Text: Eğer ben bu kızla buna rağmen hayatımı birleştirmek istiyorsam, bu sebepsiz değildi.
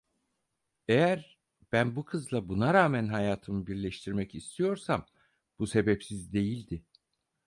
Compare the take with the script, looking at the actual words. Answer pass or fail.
pass